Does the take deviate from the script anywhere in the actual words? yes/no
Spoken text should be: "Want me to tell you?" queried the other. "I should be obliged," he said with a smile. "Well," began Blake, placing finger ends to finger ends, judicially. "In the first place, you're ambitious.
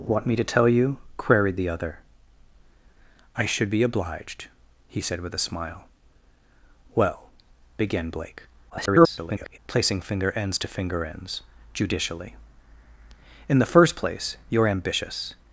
yes